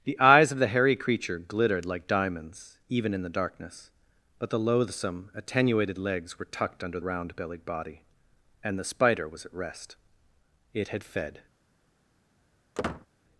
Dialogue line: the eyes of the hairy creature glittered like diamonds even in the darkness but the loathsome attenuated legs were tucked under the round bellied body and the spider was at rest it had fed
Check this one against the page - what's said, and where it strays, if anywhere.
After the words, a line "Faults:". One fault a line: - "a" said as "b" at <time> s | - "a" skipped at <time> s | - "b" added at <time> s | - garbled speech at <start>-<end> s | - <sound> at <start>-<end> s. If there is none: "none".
the eyes of the hairy creature glittered like diamonds even in the darkness but the loathsome attenuated legs were tucked under round bellied body and the spider was at rest it had fed
Faults:
- "the" skipped at 7.0 s
- squeak at 12.7-13.1 s